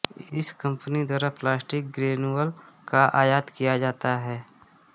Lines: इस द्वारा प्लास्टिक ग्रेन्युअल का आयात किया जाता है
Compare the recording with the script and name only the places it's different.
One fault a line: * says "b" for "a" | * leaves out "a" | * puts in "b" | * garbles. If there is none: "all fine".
* puts in "कंपनी"